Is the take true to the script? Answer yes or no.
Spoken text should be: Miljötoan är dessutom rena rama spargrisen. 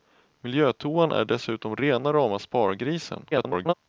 no